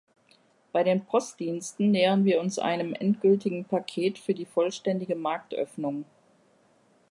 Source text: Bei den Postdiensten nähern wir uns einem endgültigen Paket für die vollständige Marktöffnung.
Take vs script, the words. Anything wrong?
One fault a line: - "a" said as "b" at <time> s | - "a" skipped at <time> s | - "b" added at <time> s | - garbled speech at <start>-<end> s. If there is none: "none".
none